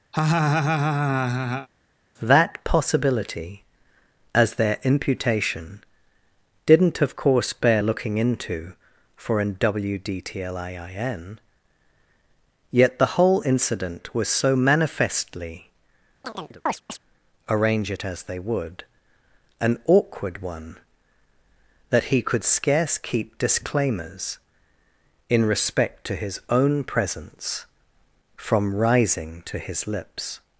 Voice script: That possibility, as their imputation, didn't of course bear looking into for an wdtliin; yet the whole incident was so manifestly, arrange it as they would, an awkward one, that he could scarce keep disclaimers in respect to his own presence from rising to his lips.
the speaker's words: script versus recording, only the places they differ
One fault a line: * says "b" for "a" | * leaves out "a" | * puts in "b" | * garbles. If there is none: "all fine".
all fine